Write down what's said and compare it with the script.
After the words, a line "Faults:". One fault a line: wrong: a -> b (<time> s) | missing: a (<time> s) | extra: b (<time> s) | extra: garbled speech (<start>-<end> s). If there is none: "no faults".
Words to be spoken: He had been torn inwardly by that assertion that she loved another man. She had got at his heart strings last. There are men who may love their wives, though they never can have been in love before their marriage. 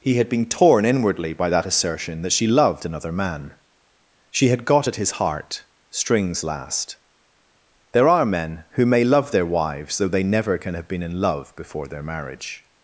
He had been torn inwardly by that assertion that she loved another man. She had got at his heart strings last. There are men who may love their wives, though they never can have been in love before their marriage.
Faults:
no faults